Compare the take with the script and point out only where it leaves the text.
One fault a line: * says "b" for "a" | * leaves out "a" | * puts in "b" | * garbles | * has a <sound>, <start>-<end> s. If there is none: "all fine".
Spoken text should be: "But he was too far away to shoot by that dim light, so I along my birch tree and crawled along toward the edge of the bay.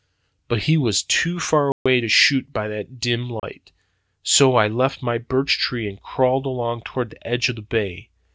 * has a dropout, 1.7-1.9 s
* has a dropout, 3.4-3.4 s
* says "left" for "along"